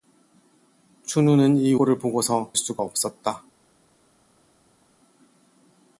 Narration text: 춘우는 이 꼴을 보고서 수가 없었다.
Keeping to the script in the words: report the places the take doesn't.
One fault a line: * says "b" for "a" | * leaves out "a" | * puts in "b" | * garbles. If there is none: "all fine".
all fine